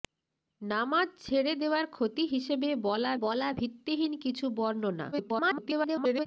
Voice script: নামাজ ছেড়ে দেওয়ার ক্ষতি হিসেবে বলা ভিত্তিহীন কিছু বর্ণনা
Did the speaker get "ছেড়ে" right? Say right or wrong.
right